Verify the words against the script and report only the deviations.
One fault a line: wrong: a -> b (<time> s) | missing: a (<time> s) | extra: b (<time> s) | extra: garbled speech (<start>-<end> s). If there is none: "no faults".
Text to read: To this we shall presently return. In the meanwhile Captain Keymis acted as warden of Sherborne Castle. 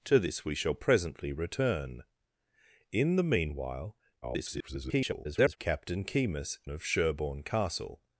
extra: garbled speech (4.2-5.6 s)
missing: acted as warden (6.6 s)